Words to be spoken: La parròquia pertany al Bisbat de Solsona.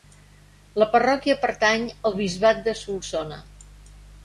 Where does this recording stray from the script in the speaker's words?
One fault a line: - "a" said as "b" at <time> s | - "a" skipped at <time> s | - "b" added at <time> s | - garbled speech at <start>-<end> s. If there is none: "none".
none